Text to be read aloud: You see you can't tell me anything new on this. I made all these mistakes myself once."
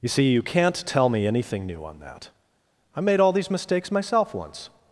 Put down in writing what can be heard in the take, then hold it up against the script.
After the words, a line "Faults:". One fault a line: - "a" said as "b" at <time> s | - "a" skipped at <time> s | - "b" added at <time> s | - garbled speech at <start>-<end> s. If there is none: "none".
You see you can't tell me anything new on that. I made all these mistakes myself once."
Faults:
- "this" said as "that" at 2.0 s